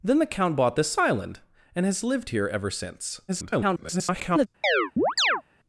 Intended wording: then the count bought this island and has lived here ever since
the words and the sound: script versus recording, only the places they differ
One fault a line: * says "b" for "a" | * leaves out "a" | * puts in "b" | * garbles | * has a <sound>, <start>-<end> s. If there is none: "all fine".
* garbles
* has a chirp, 4.6-5.4 s